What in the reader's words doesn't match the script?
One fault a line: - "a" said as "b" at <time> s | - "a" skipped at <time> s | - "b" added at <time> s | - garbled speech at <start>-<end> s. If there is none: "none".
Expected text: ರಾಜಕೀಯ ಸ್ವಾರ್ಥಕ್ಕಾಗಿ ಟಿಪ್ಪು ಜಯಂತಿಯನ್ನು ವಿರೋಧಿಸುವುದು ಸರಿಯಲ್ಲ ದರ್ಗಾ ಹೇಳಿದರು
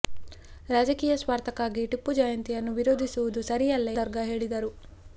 none